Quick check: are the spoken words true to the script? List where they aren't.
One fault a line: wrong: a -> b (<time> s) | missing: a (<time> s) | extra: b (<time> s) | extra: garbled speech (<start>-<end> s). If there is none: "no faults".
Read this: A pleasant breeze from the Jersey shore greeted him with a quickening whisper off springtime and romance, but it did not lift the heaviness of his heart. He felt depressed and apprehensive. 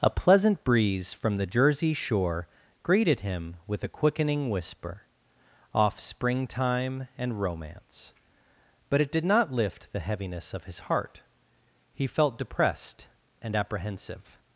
no faults